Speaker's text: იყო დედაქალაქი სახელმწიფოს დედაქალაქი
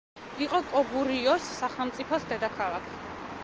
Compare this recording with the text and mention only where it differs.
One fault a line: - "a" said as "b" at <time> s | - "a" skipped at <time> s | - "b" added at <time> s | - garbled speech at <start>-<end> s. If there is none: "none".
- "დედაქალაქი" said as "კოგურიოს" at 0.7 s